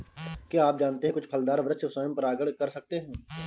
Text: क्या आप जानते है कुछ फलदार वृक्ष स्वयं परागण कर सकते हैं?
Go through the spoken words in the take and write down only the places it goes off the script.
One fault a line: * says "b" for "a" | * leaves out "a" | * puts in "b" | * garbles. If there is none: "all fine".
all fine